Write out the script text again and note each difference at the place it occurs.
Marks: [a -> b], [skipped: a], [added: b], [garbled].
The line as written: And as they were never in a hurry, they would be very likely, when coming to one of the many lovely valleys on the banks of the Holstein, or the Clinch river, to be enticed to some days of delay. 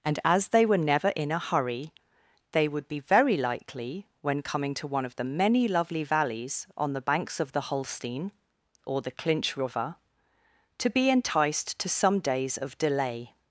And as they were never in a hurry, they would be very likely, when coming to one of the many lovely valleys on the banks of the Holstein, or the Clinch river, to be enticed to some days of delay.